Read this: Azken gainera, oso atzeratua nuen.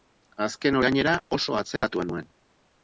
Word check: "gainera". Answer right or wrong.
right